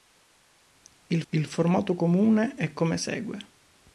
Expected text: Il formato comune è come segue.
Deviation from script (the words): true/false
true